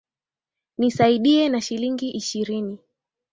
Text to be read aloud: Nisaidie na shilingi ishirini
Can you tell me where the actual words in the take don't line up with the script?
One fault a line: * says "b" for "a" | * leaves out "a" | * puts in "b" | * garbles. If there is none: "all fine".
all fine